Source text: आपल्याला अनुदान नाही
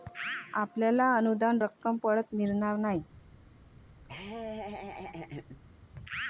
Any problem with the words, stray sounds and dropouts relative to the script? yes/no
yes